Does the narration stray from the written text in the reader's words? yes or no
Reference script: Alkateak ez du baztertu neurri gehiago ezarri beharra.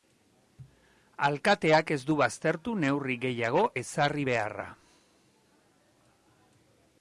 no